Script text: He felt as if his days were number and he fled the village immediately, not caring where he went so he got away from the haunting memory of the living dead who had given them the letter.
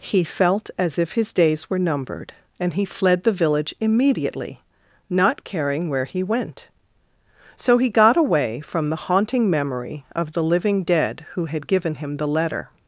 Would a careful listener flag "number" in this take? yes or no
yes